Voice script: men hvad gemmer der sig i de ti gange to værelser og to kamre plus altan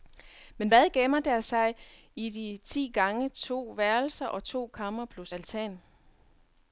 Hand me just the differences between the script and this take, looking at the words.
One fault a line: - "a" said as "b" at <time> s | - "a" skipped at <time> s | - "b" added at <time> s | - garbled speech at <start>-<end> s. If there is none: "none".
none